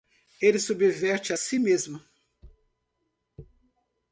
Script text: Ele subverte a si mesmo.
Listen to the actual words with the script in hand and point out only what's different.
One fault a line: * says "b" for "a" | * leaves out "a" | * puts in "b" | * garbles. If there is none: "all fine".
all fine